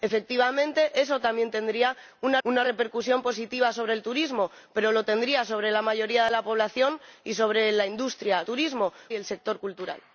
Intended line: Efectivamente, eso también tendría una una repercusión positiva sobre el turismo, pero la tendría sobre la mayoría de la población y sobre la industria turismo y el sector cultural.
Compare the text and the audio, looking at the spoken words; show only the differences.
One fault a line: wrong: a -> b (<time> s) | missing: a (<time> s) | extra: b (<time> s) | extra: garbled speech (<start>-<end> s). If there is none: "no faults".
no faults